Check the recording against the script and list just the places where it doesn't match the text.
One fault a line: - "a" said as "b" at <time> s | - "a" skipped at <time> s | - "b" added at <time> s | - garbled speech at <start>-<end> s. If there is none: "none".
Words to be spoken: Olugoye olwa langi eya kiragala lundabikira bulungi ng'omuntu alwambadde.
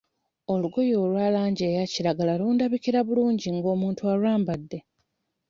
none